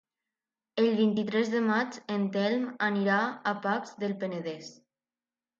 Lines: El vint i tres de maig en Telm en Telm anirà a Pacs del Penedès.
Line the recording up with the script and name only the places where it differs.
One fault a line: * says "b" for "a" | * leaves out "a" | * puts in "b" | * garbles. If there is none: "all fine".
* leaves out "en Telm"